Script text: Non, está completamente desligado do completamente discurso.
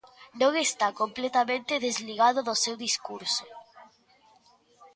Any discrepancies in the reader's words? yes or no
yes